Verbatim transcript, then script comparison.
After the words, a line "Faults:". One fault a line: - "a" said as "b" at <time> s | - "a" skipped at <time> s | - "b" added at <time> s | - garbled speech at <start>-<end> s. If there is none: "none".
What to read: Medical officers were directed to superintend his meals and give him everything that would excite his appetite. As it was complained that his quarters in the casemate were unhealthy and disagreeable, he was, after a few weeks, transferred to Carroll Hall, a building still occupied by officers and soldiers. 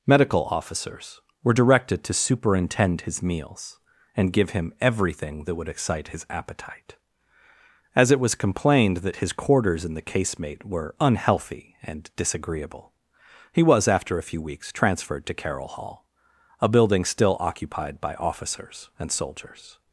Medical officers were directed to superintend his meals and give him everything that would excite his appetite. As it was complained that his quarters in the casemate were unhealthy and disagreeable, he was, after a few weeks, transferred to Carroll Hall, a building still occupied by officers and soldiers.
Faults:
none